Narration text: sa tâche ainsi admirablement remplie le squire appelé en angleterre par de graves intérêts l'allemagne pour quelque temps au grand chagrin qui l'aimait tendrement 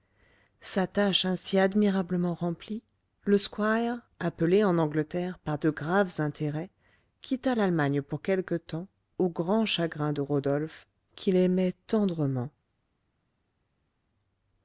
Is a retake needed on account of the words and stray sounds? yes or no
yes